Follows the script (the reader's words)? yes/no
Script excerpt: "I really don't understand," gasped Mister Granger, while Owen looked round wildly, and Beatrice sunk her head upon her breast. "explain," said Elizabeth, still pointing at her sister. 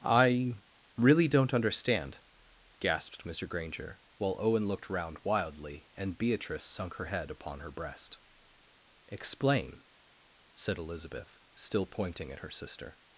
yes